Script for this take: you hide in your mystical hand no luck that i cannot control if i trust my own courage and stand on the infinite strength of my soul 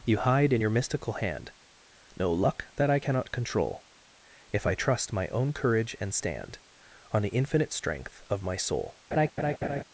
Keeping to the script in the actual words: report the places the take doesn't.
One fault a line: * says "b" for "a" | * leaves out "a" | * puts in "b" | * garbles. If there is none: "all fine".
all fine